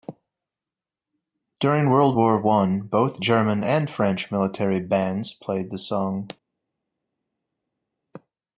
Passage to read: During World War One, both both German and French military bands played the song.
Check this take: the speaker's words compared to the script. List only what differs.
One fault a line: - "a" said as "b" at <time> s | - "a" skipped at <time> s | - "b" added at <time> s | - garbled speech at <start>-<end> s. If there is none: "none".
- "both" skipped at 3.2 s